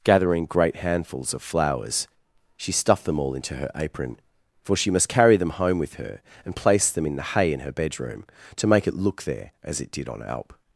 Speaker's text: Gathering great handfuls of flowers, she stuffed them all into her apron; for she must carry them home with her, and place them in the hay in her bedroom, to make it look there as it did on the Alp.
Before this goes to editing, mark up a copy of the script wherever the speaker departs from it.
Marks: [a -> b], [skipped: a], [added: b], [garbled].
Gathering great handfuls of flowers, she stuffed them all into her apron; for she must carry them home with her, and place them in the hay in her bedroom, to make it look there as it did on [skipped: the] Alp.